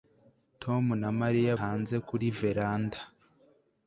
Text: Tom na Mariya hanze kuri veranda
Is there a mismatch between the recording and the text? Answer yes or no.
no